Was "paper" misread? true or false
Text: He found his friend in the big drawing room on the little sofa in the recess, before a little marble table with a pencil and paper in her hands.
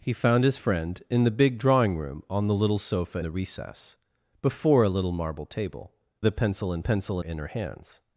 true